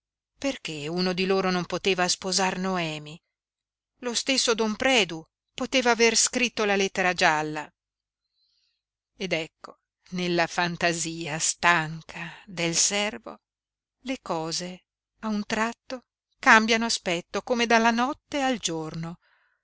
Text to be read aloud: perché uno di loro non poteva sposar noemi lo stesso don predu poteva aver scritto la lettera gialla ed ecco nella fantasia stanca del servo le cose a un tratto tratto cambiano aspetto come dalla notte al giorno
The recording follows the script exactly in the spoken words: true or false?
false